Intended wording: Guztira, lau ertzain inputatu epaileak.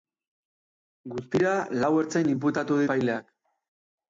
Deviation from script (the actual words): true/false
false